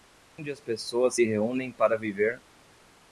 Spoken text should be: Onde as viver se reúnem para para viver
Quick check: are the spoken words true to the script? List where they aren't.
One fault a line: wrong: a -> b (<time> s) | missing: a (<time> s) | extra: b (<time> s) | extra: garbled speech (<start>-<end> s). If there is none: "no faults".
wrong: viver -> pessoas (0.6 s)
missing: para (2.0 s)